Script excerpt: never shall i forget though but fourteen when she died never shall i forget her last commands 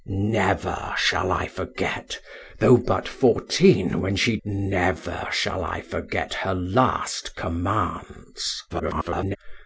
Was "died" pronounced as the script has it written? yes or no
no